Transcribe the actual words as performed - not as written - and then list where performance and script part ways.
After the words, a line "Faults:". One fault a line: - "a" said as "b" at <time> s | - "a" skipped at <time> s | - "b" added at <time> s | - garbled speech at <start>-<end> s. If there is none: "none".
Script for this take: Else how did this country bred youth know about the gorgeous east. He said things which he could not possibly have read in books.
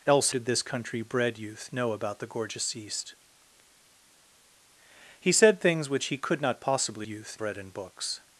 Else did this country bred youth know about the gorgeous east. He said things which he could not possibly youth read in books.
Faults:
- "how" skipped at 0.3 s
- "have" said as "youth" at 7.1 s